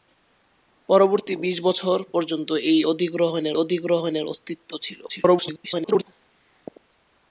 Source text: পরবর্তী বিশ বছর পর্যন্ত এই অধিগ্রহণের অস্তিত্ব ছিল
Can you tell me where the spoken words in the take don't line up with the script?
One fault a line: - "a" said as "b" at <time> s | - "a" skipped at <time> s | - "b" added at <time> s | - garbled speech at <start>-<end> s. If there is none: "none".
- "অধিগ্রহণের" added at 3.6 s
- garbled speech at 5.1-6.0 s